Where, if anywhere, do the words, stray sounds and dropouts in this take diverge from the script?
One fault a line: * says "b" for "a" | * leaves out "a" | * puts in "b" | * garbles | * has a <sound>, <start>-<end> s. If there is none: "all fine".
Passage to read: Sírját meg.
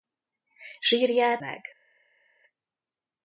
all fine